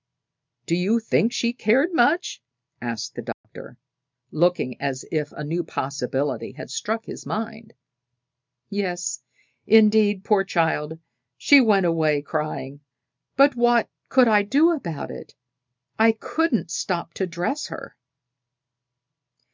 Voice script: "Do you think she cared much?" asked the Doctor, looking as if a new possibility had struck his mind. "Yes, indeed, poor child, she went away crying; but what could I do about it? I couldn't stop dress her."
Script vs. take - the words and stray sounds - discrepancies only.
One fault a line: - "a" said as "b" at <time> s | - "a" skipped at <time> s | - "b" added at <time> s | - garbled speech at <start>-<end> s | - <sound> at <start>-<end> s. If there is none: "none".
- dropout at 3.3-3.4 s
- "to" added at 17.2 s